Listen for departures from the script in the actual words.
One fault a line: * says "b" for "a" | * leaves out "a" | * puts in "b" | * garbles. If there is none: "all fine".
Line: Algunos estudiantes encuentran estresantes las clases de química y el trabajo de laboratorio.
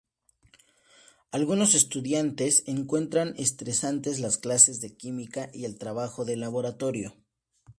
all fine